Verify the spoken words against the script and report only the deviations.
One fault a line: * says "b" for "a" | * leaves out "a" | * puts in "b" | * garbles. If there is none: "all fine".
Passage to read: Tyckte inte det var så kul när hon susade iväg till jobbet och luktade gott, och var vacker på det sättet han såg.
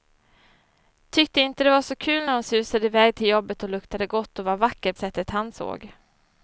* leaves out "på det"